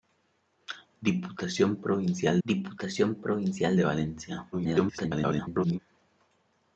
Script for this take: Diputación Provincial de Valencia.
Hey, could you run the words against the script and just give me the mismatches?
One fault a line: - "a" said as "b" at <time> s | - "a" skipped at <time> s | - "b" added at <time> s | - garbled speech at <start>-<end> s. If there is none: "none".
- "diputación Provincial" added at 2.4 s
- garbled speech at 4.5-5.8 s